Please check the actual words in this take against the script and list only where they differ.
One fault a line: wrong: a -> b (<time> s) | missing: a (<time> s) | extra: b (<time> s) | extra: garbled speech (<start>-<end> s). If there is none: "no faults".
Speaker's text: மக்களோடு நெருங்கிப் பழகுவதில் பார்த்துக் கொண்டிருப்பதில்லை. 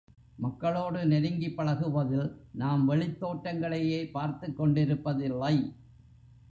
extra: நாம் வெளித் தோற்றங்களையே (2.5 s)